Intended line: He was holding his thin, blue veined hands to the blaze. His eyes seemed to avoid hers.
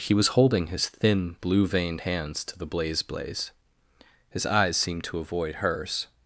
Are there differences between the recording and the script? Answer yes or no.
yes